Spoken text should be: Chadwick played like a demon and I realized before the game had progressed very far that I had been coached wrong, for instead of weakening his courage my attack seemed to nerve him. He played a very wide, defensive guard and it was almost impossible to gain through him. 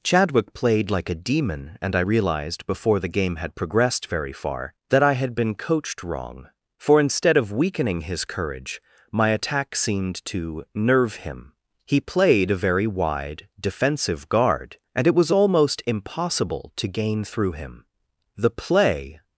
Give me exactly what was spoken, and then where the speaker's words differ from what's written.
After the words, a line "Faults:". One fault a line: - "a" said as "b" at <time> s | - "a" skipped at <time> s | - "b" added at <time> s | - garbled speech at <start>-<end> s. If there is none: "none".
Chadwick played like a demon and I realized before the game had progressed very far that I had been coached wrong, for instead of weakening his courage my attack seemed to nerve him. He played a very wide, defensive guard and it was almost impossible to gain through him. The play
Faults:
- "The play" added at 18.4 s